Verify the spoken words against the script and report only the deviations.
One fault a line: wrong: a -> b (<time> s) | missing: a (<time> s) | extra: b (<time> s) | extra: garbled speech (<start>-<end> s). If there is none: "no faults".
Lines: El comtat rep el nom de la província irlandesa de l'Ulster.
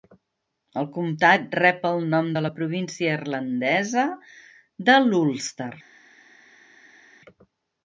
no faults